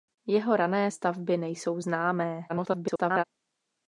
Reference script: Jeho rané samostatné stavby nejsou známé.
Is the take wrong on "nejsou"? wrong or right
right